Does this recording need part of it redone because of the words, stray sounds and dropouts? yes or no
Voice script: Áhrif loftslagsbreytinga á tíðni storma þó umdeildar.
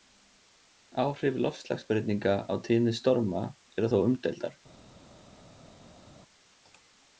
yes